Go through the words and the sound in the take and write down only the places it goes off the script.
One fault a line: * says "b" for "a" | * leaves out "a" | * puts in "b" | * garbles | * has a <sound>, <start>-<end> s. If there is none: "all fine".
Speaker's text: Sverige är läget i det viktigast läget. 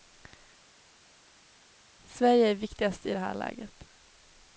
* says "viktigast" for "läget"
* says "här" for "viktigast"